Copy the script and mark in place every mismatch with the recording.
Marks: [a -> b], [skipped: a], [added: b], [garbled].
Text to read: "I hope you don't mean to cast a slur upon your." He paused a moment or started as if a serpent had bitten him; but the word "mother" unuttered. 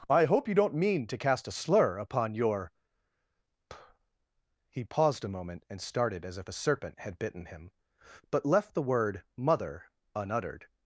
"I hope you don't mean to cast a slur upon your." He paused a moment [or -> and] started as if a serpent had bitten him; but [added: left] the word "mother" unuttered.